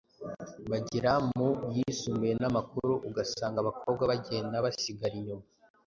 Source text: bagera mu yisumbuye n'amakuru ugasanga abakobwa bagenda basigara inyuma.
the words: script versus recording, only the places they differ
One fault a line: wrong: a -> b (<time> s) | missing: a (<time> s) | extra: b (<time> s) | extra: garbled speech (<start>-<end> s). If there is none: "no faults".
no faults